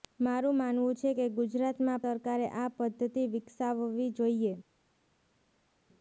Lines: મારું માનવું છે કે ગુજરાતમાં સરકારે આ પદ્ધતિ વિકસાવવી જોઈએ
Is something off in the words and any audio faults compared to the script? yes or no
no